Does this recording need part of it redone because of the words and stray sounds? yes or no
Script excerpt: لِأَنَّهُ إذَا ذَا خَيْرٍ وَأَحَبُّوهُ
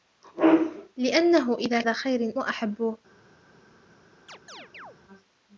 yes